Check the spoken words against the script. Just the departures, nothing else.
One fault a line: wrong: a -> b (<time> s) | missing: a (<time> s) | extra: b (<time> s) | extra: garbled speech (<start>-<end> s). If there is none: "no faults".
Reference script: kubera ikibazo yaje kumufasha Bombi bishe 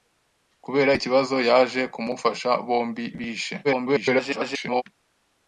extra: garbled speech (3.6-4.8 s)